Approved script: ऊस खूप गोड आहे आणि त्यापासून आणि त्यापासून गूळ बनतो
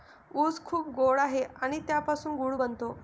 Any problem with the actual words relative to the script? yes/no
yes